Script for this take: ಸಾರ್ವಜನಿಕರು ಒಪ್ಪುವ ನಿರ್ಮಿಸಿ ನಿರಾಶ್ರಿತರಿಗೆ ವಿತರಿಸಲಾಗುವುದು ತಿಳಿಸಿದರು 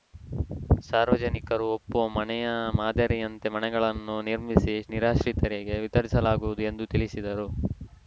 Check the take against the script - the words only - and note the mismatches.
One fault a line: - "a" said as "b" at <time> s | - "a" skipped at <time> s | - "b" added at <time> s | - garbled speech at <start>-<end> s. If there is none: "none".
- "ಮನೆಯ ಮಾದರಿಯಂತೆ ಮನೆಗಳನ್ನು" added at 2.1 s
- "ಎಂದು" added at 6.7 s